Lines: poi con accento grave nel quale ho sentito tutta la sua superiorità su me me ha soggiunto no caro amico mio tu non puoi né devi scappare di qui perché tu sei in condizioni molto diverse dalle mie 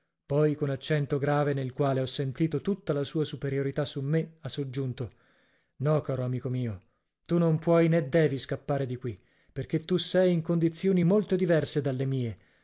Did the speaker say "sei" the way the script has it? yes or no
yes